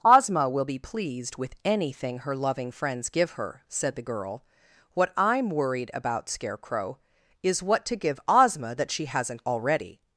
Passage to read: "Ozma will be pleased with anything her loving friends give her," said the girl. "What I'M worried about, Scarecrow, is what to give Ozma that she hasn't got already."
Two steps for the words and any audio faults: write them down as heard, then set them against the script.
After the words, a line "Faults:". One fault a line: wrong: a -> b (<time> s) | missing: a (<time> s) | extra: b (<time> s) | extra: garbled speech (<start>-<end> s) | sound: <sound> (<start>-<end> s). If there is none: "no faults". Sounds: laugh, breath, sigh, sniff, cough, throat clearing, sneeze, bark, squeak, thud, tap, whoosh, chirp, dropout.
"Ozma will be pleased with anything her loving friends give her," said the girl. "What I'M worried about, Scarecrow, is what to give Ozma that she hasn't already."
Faults:
missing: got (9.4 s)